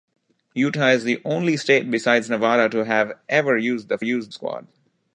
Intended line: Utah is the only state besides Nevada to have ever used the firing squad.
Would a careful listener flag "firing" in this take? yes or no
yes